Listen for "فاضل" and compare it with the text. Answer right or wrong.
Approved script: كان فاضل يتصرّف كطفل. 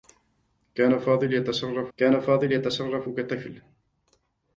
right